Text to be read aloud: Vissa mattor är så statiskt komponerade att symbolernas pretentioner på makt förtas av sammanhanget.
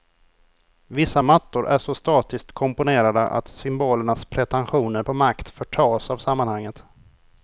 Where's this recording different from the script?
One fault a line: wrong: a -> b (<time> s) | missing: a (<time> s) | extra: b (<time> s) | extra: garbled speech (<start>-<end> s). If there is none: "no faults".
no faults